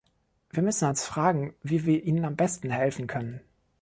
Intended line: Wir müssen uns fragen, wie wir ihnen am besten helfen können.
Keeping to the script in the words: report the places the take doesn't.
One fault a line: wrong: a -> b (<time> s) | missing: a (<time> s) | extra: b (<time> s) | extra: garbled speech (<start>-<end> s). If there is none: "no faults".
no faults